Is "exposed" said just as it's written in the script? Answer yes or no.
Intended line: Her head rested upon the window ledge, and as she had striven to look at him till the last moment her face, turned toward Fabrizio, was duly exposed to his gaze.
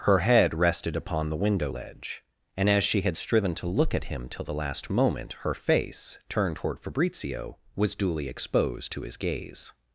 yes